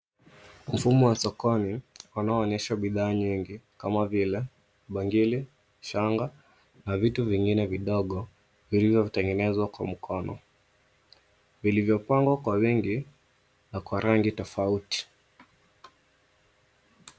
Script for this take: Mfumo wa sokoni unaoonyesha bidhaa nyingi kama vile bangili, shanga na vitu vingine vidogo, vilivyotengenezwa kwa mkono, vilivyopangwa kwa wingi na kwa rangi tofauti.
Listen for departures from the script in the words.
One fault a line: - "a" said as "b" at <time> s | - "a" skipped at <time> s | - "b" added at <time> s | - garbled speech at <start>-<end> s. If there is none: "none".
none